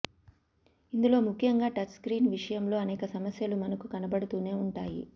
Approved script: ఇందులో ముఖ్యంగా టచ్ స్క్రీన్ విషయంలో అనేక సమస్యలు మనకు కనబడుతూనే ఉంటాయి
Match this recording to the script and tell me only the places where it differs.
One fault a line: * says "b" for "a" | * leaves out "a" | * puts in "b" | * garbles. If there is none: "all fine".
all fine